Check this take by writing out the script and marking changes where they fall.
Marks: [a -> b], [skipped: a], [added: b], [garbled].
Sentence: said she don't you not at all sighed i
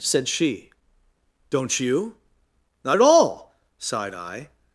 said she don't you not at all sighed i